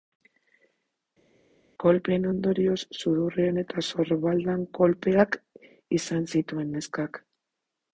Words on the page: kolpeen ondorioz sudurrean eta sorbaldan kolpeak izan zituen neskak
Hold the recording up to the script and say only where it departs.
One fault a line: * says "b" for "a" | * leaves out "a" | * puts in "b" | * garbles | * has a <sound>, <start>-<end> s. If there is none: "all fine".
all fine